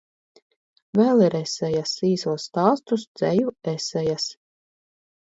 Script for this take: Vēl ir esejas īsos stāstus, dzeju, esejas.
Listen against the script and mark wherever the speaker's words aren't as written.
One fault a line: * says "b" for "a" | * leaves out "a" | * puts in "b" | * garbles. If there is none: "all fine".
all fine